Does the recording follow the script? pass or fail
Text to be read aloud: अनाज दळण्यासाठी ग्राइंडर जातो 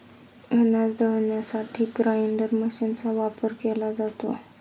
fail